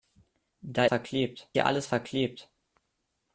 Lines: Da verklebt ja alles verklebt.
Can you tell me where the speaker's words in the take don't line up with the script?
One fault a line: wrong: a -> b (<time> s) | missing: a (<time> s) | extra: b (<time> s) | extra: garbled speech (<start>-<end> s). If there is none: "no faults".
no faults